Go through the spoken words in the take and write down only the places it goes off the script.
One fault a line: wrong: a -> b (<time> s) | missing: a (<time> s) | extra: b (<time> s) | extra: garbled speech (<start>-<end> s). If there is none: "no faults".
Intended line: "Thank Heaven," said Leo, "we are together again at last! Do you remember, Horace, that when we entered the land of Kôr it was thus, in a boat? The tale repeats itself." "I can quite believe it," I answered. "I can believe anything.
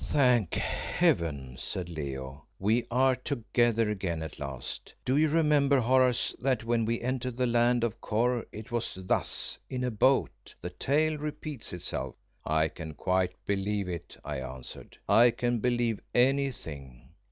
no faults